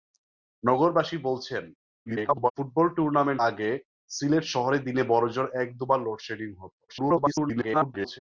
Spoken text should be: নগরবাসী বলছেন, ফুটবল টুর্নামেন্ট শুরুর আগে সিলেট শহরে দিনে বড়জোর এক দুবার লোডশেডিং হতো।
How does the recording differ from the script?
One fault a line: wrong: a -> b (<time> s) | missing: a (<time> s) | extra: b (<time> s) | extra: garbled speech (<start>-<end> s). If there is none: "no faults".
extra: garbled speech (2.1-2.5 s)
missing: শুরুর (3.4 s)
extra: garbled speech (6.9-8.2 s)